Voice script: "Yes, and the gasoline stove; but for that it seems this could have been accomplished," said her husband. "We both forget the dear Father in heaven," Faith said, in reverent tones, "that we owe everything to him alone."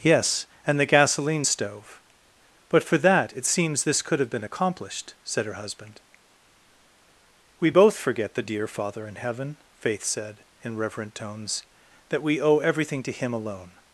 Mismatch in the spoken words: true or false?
false